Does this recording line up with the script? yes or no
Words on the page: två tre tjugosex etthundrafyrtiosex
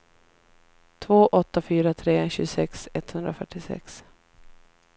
no